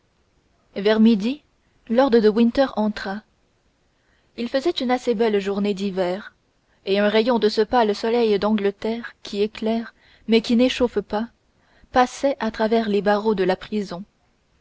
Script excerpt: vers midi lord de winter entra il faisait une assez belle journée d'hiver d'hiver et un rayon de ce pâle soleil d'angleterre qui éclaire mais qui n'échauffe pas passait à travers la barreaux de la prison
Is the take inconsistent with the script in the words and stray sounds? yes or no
yes